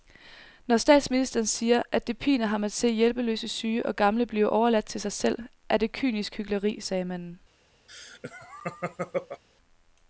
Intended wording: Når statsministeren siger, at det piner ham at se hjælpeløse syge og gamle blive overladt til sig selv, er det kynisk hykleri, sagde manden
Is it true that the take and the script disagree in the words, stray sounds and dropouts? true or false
true